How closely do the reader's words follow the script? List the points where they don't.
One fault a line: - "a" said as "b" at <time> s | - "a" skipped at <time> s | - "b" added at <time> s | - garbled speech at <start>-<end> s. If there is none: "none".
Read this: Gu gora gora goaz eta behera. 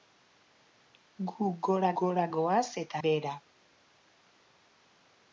none